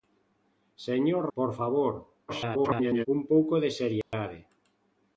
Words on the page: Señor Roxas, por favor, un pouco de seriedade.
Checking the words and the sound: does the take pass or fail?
fail